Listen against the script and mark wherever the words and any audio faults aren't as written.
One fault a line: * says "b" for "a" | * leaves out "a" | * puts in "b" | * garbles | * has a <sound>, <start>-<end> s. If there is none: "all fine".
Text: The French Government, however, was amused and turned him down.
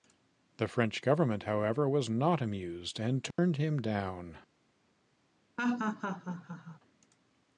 * puts in "not"
* has a dropout, 3.3-3.4 s
* has a laugh, 5.6-6.8 s